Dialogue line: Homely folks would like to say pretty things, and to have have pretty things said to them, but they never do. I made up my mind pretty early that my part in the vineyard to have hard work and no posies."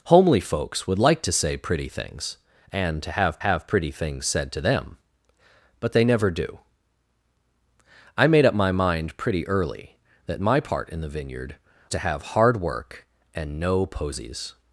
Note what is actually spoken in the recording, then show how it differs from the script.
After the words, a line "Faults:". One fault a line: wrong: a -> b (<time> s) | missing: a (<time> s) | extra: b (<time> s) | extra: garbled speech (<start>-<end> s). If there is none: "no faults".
Homely folks would like to say pretty things, and to have have pretty things said to them, but they never do. I made up my mind pretty early that my part in the vineyard to have hard work and no posies."
Faults:
no faults